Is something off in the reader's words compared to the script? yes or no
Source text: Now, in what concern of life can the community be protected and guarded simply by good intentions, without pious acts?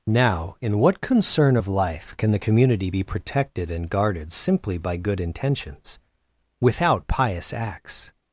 no